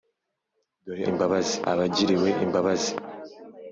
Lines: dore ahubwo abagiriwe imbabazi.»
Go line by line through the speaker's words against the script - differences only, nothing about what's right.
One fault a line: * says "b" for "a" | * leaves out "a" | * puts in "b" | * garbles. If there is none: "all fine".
* says "imbabazi" for "ahubwo"